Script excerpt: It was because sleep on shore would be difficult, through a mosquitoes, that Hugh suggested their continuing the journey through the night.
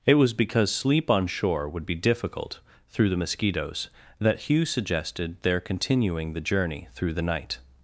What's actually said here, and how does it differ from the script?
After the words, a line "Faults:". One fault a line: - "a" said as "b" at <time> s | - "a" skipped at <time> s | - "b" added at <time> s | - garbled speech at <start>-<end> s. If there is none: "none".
It was because sleep on shore would be difficult, through the mosquitoes, that Hugh suggested their continuing the journey through the night.
Faults:
- "a" said as "the" at 3.1 s